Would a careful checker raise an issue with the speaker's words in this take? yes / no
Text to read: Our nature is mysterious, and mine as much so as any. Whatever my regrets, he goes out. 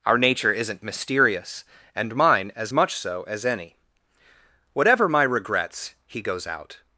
yes